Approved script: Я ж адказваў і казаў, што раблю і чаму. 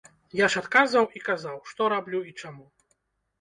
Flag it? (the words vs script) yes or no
no